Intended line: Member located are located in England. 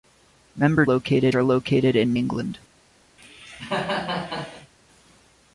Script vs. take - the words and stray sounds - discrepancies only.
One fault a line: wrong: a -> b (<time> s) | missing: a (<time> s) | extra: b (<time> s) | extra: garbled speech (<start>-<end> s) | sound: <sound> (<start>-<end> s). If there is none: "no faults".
sound: cough (3.2-4.7 s)